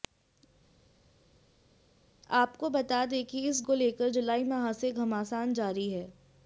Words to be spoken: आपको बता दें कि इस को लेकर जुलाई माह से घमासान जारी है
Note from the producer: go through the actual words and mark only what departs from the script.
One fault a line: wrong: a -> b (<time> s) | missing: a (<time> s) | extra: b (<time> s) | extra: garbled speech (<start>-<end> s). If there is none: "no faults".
no faults